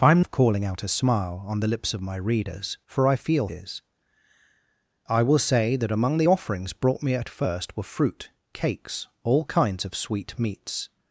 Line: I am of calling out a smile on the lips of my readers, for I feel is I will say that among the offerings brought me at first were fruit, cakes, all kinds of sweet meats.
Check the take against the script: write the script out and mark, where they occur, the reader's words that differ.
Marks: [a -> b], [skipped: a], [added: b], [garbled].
I am of calling out a smile on the lips of my readers, for I feel is I will say that among the offerings brought me at first were fruit, cakes, all kinds of sweet meats.